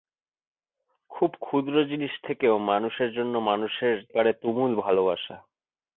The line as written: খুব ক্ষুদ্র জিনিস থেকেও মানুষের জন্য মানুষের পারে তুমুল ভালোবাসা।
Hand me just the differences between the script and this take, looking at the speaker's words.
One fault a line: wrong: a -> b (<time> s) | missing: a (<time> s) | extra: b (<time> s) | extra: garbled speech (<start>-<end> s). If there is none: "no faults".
no faults